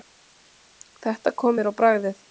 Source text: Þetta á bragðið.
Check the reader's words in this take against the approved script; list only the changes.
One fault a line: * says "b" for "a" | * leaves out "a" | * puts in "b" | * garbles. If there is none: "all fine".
* puts in "kom mér"